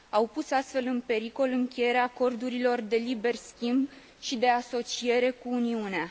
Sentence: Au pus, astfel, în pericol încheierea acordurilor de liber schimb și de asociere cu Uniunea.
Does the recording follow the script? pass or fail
pass